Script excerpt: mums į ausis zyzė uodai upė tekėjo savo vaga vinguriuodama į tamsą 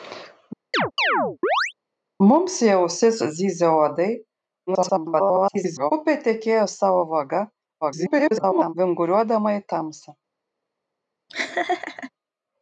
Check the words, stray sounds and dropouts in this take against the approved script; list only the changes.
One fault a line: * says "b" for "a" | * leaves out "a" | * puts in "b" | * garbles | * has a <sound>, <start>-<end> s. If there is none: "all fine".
* has a chirp, 0.7-1.7 s
* garbles
* garbles
* has a laugh, 11.3-12.1 s